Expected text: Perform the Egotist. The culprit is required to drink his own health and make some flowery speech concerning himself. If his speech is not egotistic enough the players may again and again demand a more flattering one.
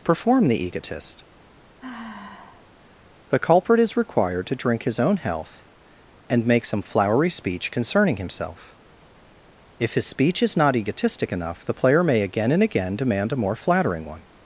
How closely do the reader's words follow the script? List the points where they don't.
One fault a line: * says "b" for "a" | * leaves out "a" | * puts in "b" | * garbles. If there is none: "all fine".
* says "player" for "players"